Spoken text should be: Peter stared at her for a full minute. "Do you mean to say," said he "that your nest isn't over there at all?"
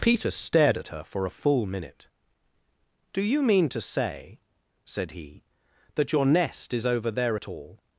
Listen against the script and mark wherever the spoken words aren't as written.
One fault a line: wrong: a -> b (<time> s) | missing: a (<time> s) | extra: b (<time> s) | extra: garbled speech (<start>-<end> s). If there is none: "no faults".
wrong: isn't -> is (6.7 s)